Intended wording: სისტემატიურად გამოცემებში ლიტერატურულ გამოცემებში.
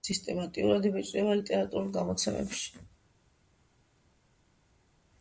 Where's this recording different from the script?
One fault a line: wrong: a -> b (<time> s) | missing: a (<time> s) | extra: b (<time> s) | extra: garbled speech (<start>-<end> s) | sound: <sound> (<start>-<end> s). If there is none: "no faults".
wrong: გამოცემებში -> იბეჭდება (0.9 s)